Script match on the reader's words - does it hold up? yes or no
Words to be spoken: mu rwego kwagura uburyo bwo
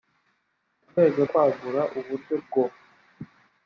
yes